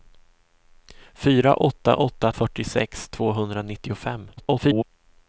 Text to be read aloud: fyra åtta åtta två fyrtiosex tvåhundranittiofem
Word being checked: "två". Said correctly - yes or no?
no